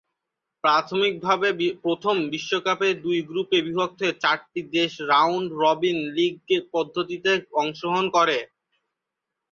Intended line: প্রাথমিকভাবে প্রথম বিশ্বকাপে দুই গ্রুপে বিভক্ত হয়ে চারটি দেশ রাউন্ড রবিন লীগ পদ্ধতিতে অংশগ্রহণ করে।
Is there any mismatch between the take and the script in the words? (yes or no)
no